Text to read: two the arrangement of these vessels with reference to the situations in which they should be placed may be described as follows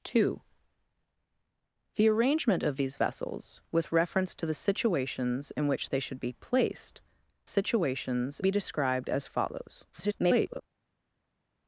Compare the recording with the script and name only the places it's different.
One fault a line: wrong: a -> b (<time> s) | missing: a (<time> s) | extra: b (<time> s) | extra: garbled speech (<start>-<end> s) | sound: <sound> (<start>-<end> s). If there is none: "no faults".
wrong: may -> situations (7.4 s)
extra: garbled speech (9.9-10.6 s)